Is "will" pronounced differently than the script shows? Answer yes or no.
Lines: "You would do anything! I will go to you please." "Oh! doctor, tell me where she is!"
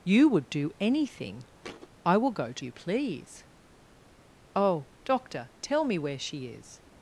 no